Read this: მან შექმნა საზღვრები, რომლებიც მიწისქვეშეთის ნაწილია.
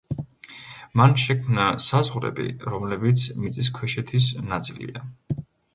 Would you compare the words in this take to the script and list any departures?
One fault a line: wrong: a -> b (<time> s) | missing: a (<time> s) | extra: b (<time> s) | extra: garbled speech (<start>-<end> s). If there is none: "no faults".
no faults